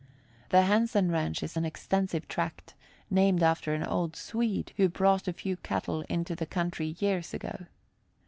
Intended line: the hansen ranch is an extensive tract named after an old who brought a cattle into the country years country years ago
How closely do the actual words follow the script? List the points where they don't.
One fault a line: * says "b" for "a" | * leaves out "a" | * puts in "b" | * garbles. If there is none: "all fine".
* puts in "swede"
* puts in "few"
* leaves out "country years"